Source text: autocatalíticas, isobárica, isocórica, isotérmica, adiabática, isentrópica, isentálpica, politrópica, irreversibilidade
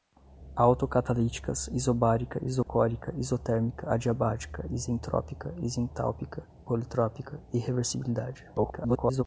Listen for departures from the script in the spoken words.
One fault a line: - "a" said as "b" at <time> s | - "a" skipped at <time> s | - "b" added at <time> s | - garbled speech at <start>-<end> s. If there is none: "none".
- garbled speech at 8.6-9.2 s